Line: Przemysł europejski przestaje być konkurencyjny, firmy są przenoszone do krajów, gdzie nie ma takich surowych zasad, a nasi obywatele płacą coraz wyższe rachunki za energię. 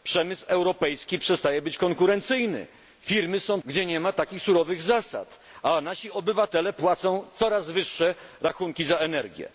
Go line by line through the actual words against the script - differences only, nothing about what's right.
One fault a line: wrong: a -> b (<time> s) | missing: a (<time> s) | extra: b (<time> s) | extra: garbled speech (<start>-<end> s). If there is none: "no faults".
missing: przenoszone do krajów (3.6 s)